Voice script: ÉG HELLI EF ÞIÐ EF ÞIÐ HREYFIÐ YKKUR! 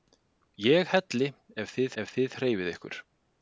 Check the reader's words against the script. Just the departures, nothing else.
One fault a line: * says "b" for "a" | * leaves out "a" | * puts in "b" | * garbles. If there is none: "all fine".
all fine